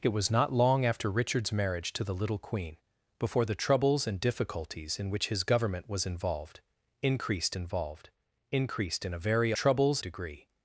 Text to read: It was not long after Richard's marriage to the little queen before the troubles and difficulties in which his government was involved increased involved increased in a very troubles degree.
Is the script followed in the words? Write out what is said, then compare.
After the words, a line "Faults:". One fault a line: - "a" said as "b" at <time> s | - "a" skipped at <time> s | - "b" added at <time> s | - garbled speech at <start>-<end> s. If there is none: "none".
It was not long after Richard's marriage to the little queen before the troubles and difficulties in which his government was involved increased involved increased in a very troubles degree.
Faults:
none